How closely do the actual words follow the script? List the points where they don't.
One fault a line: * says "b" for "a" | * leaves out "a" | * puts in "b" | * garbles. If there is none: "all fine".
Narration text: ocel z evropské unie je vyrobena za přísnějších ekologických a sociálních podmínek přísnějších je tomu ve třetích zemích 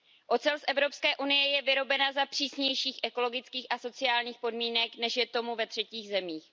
* says "než" for "přísnějších"